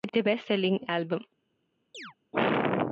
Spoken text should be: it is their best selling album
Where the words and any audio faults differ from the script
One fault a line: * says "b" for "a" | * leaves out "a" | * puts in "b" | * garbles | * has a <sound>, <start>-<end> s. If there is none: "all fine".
* leaves out "is"
* has a chirp, 1.9-2.1 s